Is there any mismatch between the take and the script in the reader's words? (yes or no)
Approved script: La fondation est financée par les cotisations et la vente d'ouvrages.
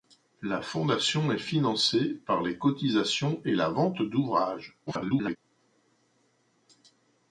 yes